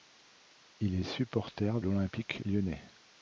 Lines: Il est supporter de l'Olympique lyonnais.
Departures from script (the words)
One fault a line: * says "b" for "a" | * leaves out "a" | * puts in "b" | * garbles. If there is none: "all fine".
* leaves out "de"